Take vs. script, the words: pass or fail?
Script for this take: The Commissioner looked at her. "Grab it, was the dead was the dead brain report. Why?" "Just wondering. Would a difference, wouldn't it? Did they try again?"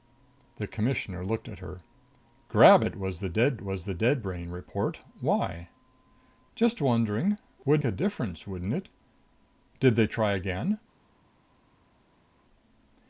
pass